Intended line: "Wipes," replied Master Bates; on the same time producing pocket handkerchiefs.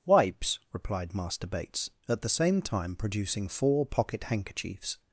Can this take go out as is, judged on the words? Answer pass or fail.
fail